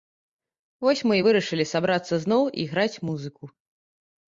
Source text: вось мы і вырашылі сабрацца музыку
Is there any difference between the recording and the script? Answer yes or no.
yes